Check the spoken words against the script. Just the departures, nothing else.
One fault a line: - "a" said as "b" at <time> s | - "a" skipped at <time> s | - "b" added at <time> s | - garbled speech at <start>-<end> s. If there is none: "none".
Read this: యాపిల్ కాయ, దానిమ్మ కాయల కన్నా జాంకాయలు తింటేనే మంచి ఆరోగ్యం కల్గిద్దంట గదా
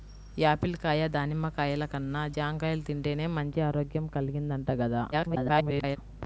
- garbled speech at 5.1-6.0 s